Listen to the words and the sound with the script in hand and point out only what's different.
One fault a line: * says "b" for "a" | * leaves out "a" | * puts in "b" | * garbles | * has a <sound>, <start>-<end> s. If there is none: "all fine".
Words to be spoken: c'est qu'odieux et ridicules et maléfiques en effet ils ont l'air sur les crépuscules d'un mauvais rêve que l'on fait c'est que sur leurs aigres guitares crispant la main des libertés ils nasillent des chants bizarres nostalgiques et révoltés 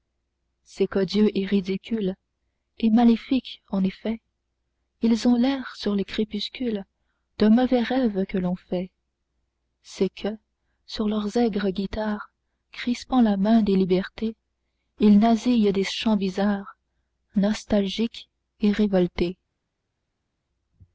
all fine